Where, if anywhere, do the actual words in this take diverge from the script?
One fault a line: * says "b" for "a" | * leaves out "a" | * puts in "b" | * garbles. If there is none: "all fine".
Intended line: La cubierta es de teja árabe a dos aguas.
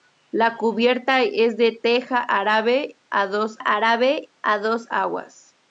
* puts in "árabe a dos"